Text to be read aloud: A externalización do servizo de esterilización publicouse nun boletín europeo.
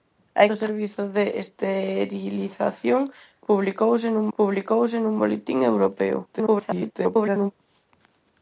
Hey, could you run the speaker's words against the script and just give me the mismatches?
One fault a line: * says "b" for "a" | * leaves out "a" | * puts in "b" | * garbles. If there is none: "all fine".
* leaves out "externalización"
* puts in "publicouse nun"
* garbles